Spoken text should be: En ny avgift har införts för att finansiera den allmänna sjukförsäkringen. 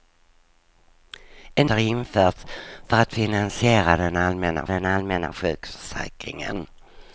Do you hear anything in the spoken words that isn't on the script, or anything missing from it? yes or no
yes